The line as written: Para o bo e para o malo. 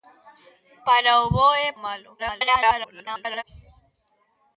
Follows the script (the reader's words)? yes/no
no